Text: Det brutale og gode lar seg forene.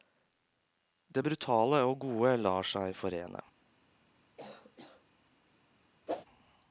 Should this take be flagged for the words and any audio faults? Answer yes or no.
yes